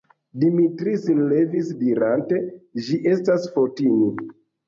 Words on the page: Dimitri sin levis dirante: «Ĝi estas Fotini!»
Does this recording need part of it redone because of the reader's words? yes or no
no